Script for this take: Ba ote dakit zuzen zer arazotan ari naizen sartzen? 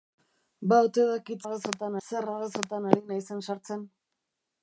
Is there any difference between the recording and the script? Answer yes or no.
yes